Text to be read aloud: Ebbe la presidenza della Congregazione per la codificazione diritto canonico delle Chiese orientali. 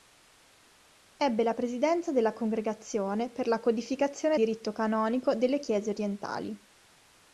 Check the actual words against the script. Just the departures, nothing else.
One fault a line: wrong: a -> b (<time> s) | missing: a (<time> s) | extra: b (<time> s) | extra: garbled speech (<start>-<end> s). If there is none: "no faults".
no faults